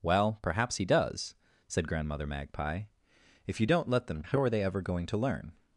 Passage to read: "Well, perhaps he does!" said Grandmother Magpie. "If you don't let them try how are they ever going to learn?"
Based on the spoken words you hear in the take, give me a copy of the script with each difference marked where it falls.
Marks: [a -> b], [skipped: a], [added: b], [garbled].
"Well, perhaps he does!" said Grandmother Magpie. "If you don't let them [skipped: try] how are they ever going to learn?"